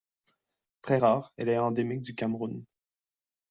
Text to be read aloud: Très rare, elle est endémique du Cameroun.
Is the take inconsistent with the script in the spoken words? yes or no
no